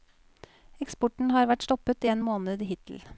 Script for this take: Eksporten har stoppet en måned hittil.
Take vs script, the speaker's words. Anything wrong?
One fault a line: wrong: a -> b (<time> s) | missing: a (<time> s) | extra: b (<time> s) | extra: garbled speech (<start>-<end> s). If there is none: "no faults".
extra: vært (1.5 s)